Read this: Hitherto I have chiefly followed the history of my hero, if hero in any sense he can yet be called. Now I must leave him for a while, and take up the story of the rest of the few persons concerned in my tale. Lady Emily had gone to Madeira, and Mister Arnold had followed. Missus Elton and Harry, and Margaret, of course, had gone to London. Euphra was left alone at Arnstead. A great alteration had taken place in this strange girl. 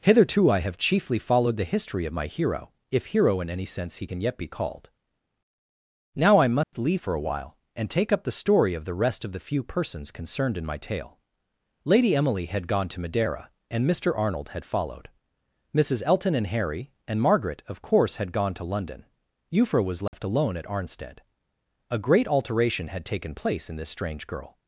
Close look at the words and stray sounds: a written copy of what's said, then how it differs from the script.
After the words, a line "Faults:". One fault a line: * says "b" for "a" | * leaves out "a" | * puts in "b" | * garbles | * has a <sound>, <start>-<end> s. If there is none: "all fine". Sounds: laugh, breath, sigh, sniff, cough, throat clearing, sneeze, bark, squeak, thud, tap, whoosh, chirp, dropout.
Hitherto I have chiefly followed the history of my hero, if hero in any sense he can yet be called. Now I must leave for a while, and take up the story of the rest of the few persons concerned in my tale. Lady Emily had gone to Madeira, and Mister Arnold had followed. Missus Elton and Harry, and Margaret, of course, had gone to London. Euphra was left alone at Arnstead. A great alteration had taken place in this strange girl.
Faults:
* has a dropout, 6.6-6.7 s
* leaves out "him"
* has a dropout, 20.1-20.1 s